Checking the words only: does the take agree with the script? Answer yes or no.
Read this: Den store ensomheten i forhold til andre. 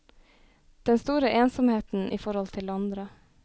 yes